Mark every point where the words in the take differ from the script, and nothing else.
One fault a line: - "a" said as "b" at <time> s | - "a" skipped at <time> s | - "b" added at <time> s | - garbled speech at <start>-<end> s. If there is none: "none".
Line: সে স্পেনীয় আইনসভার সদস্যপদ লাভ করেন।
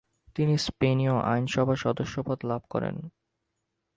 - "সে" said as "তিনি" at 0.3 s